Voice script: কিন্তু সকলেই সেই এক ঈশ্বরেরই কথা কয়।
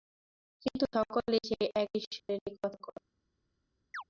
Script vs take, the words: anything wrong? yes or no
no